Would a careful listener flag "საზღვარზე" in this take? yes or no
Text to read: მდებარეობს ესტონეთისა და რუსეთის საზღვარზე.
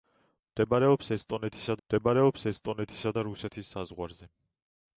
no